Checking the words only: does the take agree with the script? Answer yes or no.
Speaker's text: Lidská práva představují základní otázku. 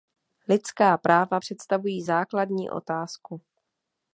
yes